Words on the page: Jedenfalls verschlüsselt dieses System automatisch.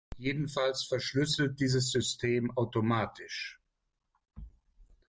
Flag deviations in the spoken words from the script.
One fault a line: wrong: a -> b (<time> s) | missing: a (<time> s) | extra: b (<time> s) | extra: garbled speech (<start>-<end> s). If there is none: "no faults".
no faults